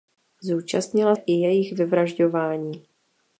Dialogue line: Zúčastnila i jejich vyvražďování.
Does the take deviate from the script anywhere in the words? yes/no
no